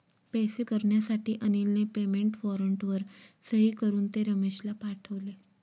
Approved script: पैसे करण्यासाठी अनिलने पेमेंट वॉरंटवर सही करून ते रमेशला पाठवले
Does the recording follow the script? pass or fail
pass